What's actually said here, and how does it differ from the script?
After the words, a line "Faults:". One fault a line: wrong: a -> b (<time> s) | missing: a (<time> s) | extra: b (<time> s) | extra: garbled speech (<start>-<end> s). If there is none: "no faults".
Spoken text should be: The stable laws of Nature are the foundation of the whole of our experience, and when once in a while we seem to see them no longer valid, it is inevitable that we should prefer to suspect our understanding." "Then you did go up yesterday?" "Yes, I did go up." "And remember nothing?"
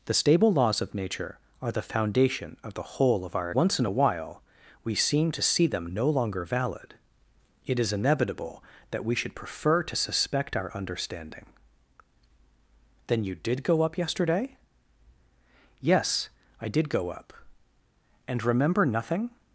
The stable laws of Nature are the foundation of the whole of our once in a while we seem to see them no longer valid, it is inevitable that we should prefer to suspect our understanding." "Then you did go up yesterday?" "Yes, I did go up." "And remember nothing?"
Faults:
missing: experience and when (3.5 s)